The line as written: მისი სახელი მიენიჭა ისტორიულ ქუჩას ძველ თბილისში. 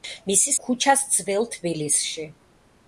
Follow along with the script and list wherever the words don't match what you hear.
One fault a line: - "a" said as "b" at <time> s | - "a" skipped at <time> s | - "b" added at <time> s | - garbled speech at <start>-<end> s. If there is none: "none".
- "სახელი მიენიჭა ისტორიულ" skipped at 0.5 s